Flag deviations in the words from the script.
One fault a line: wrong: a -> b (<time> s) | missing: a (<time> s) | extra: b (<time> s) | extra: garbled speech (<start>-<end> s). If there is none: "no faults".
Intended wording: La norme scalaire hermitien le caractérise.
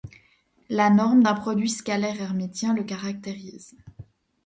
extra: d'un produit (1.2 s)